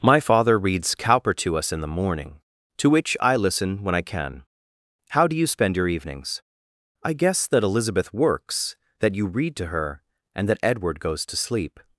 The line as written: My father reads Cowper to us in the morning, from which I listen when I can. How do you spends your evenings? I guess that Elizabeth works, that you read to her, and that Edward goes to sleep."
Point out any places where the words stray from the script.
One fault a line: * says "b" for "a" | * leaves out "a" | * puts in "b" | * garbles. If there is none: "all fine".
* says "to" for "from"
* says "spend" for "spends"